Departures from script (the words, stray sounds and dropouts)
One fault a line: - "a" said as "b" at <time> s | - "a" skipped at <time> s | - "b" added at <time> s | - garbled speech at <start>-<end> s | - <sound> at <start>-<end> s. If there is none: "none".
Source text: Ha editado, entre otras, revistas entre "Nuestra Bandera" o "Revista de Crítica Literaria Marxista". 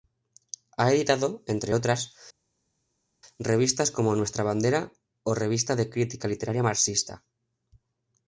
- "entre" said as "como" at 3.9 s